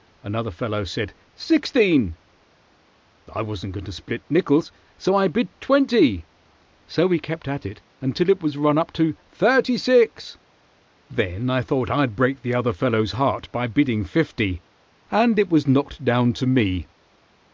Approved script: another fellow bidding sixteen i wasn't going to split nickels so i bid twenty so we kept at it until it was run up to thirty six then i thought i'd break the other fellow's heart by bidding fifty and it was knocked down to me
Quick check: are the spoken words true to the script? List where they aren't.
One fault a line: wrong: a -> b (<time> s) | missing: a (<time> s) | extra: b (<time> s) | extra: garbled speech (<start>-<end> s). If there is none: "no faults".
wrong: bidding -> said (0.8 s)